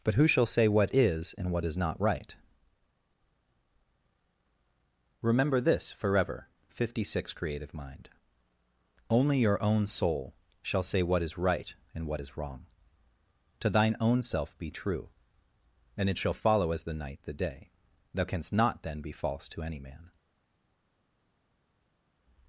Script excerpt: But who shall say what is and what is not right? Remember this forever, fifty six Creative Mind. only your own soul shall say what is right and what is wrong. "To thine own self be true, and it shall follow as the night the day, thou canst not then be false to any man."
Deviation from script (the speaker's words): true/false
false